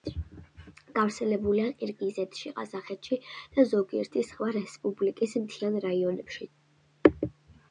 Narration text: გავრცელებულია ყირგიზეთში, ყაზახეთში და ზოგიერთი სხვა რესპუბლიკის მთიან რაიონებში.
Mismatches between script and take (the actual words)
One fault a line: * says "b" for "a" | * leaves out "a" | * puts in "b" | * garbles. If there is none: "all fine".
all fine